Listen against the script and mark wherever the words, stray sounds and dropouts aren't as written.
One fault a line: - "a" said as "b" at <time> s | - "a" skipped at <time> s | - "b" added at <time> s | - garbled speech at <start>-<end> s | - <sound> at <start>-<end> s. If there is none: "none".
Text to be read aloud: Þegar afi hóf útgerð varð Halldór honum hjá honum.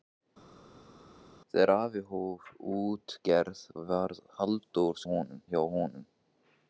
none